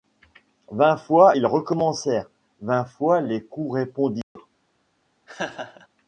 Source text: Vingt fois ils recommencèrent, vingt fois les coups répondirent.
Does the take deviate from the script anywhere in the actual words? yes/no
no